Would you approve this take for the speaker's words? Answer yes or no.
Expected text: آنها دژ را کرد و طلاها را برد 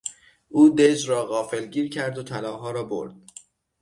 no